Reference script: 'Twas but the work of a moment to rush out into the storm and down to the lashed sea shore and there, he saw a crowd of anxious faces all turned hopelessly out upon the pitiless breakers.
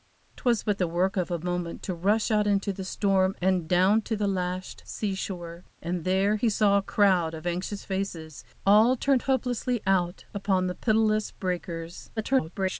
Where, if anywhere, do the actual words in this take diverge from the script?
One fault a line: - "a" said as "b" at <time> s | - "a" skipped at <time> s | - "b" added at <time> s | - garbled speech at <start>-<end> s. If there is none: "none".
- garbled speech at 12.2-12.8 s